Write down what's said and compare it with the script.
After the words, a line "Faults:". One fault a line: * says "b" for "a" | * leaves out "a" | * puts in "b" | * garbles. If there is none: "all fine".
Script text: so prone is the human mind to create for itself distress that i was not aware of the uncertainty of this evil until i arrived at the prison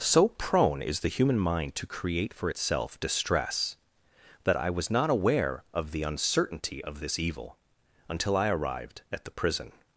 so prone is the human mind to create for itself distress that i was not aware of the uncertainty of this evil until i arrived at the prison
Faults:
all fine